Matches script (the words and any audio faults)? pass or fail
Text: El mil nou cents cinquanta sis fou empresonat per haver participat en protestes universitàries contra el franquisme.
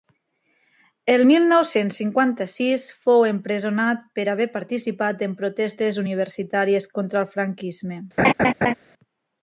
fail